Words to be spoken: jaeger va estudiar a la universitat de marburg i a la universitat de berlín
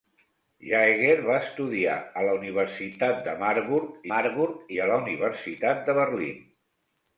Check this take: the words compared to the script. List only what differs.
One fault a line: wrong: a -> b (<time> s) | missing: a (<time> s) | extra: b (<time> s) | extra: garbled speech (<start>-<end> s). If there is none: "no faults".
extra: marburg (4.1 s)